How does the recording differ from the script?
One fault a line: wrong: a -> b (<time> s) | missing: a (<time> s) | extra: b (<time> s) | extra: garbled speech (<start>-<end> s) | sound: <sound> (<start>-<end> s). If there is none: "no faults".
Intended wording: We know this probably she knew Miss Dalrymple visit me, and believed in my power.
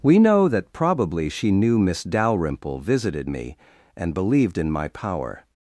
wrong: this -> that (0.5 s)
wrong: visit -> visited (2.8 s)